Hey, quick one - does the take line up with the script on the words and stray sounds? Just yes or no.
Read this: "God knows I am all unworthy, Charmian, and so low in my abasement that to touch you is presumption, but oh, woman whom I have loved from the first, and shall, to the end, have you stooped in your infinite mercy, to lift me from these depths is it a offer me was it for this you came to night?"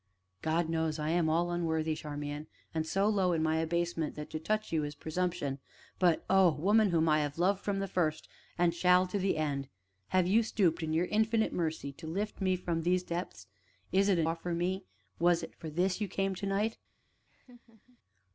no